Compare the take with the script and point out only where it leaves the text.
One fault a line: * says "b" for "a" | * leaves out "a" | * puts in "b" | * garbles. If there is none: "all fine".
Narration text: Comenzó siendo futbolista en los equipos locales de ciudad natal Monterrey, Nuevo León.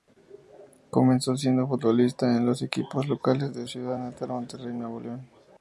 all fine